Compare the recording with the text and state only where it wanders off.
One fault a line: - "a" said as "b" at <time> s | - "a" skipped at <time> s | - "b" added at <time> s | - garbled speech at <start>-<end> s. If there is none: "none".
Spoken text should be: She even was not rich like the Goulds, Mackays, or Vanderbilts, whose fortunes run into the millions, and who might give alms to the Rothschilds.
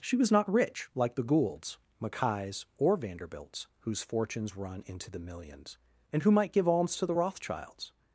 - "even" skipped at 0.2 s